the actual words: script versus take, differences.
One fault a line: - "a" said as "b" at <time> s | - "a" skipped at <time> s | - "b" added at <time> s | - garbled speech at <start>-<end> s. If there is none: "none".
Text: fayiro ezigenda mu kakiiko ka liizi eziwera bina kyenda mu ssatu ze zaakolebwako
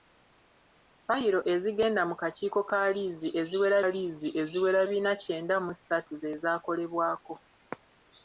- "liizi eziwera" added at 3.9 s